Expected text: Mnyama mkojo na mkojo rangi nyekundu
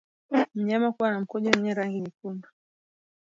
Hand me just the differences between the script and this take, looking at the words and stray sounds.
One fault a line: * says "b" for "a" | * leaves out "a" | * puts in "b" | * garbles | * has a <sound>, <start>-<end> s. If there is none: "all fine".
* says "kuwa" for "mkojo"
* puts in "wenye"